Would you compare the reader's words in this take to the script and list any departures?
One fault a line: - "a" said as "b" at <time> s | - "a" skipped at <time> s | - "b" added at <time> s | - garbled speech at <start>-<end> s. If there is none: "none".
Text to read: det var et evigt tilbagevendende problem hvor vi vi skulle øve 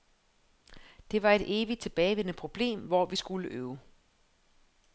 - "vi" skipped at 3.1 s